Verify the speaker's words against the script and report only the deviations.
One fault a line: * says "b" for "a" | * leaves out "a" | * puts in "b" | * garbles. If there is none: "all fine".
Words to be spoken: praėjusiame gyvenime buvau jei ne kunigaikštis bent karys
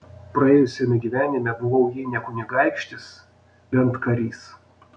all fine